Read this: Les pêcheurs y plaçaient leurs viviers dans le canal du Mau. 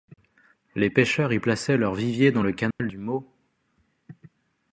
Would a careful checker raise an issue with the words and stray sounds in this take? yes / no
yes